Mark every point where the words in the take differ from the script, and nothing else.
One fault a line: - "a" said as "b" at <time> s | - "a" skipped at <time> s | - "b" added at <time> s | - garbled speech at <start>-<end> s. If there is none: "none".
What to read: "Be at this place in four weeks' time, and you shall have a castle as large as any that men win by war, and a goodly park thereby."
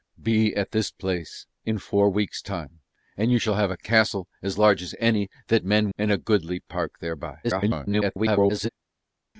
- "win by war" skipped at 5.9 s
- garbled speech at 7.4-8.7 s